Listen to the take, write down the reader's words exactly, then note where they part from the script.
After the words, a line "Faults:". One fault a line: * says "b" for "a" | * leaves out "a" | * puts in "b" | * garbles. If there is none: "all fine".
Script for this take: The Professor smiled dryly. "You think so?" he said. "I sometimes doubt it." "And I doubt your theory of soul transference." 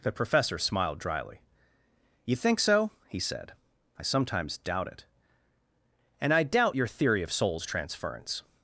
The Professor smiled dryly. "You think so?" he said. "I sometimes doubt it." "And I doubt your theory of souls transference."
Faults:
* says "souls" for "soul"